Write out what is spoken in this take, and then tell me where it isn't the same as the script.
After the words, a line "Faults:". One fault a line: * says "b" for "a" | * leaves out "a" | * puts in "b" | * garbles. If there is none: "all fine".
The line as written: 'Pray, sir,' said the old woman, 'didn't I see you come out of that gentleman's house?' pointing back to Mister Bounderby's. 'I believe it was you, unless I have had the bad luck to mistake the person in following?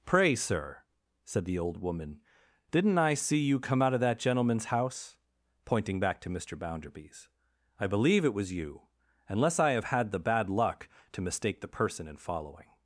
'Pray, sir,' said the old woman, 'didn't I see you come out of that gentleman's house?' pointing back to Mister Bounderby's. 'I believe it was you, unless I have had the bad luck to mistake the person in following?
Faults:
all fine